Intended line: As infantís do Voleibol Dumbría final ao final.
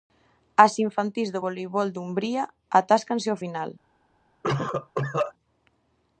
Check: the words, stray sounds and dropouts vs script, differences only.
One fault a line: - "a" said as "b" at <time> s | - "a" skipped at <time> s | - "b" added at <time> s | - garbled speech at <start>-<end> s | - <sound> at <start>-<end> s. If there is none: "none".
- "final" said as "atáscanse" at 2.8 s
- cough at 4.4-5.3 s